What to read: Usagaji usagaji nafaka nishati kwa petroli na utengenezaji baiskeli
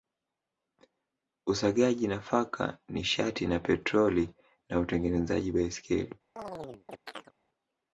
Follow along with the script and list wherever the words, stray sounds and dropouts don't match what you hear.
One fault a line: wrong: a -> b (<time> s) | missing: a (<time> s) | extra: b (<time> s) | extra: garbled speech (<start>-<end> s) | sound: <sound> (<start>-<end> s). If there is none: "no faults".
missing: usagaji (2.1 s)
wrong: kwa -> na (3.5 s)
sound: chirp (6.4-7.3 s)